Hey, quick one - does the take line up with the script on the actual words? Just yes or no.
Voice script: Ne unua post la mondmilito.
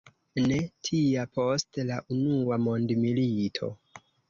no